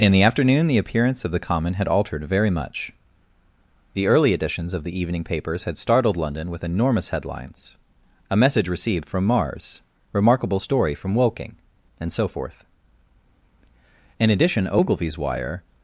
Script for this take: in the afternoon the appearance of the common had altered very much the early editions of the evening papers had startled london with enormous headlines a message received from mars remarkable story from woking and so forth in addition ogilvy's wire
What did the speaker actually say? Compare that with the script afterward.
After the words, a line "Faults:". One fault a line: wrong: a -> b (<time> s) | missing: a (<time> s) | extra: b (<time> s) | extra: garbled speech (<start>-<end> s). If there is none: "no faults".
in the afternoon the appearance of the common had altered very much the early editions of the evening papers had startled london with enormous headlines a message received from mars remarkable story from woking and so forth in addition ogilvy's wire
Faults:
no faults